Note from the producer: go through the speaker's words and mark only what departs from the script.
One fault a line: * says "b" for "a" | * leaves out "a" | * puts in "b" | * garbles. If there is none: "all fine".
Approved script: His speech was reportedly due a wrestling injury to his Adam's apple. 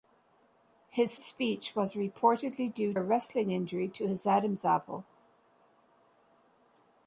all fine